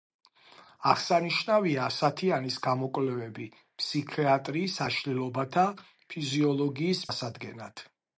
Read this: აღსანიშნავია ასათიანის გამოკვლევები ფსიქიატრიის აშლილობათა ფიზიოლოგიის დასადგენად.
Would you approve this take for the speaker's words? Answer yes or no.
yes